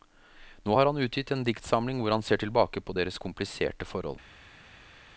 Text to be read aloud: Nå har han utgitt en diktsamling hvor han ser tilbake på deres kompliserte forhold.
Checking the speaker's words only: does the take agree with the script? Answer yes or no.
yes